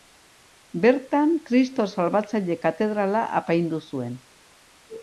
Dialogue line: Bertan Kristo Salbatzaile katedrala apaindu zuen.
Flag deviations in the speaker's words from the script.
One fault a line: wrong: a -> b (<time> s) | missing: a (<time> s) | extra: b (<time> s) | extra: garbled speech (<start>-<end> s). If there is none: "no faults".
no faults